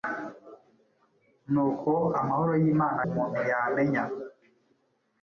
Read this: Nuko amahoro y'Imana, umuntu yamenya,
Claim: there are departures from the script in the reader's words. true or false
false